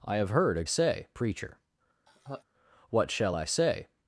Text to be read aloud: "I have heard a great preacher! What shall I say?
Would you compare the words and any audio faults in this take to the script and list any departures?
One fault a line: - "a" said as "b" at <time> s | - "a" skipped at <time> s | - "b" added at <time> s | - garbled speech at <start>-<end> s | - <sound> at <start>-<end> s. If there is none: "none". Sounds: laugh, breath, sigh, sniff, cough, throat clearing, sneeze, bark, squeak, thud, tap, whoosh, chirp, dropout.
- "great" said as "say" at 0.7 s
- laugh at 2.1-2.4 s